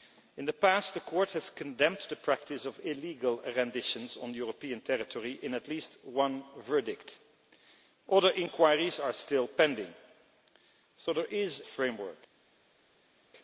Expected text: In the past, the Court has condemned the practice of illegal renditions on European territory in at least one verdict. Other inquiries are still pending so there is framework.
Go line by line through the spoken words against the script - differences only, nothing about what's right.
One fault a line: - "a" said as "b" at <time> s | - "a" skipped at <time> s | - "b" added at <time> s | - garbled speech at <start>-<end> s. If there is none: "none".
none